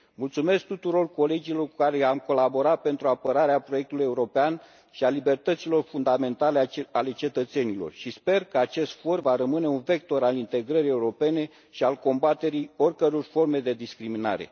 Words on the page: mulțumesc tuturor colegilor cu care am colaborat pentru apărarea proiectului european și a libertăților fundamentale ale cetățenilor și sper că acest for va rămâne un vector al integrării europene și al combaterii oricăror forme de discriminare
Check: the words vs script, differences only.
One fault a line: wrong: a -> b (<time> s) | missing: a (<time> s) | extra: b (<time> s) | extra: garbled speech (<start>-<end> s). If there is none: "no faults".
no faults